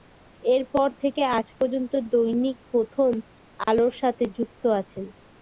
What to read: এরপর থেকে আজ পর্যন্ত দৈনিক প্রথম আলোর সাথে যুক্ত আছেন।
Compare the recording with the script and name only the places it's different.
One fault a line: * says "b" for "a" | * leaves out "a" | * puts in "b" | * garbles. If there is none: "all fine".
all fine